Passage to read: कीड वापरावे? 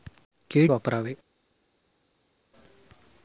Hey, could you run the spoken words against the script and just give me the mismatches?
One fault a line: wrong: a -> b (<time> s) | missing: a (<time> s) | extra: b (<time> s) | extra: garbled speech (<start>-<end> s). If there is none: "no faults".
no faults